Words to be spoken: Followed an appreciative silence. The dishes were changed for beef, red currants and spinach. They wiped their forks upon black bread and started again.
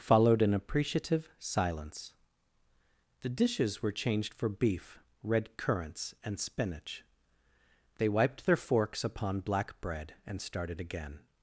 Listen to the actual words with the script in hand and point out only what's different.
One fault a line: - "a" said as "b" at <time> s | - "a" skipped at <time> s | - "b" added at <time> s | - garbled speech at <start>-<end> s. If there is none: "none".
none